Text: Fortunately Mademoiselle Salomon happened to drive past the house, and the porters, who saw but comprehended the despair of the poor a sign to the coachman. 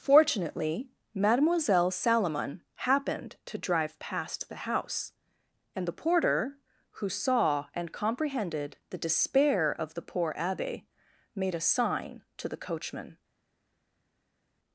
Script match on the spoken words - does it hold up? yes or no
no